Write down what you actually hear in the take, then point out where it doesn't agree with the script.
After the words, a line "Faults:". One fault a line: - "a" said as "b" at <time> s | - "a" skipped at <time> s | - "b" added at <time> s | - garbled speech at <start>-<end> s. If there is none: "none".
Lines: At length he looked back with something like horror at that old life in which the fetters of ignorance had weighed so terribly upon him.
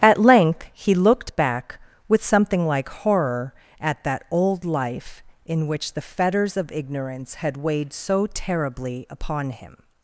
At length he looked back with something like horror at that old life in which the fetters of ignorance had weighed so terribly upon him.
Faults:
none